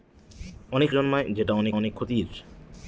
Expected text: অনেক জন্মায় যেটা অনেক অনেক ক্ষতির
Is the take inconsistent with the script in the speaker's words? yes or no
no